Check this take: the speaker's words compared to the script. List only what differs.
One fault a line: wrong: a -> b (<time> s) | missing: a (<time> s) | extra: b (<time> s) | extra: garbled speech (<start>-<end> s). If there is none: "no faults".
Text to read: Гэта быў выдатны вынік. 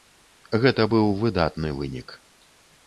no faults